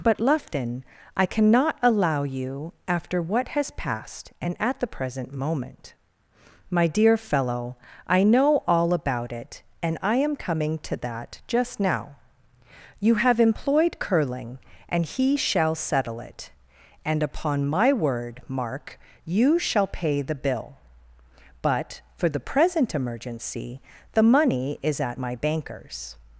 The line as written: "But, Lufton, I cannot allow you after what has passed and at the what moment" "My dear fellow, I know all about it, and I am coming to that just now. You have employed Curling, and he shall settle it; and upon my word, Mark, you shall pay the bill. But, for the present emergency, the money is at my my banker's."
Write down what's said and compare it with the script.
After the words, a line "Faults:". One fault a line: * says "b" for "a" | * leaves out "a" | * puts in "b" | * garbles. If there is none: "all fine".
"But, Lufton, I cannot allow you after what has passed and at the present moment" "My dear fellow, I know all about it, and I am coming to that just now. You have employed Curling, and he shall settle it; and upon my word, Mark, you shall pay the bill. But, for the present emergency, the money is at my banker's."
Faults:
* says "present" for "what"
* leaves out "my"